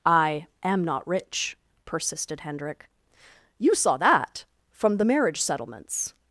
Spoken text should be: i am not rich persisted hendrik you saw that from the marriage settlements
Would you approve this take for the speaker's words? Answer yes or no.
yes